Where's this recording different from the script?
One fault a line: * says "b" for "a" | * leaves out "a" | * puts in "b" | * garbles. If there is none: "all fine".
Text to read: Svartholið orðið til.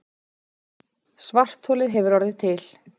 * puts in "hefur"